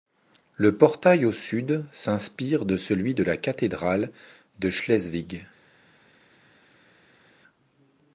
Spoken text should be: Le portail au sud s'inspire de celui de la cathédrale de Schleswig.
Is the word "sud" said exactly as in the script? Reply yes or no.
yes